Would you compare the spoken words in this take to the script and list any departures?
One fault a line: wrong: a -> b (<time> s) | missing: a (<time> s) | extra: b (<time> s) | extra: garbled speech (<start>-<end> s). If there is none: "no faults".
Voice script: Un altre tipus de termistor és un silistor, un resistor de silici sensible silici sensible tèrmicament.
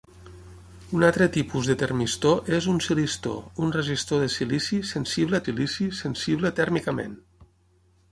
no faults